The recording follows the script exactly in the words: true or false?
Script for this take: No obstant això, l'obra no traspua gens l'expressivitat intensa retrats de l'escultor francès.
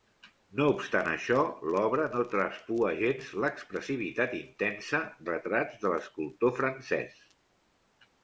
true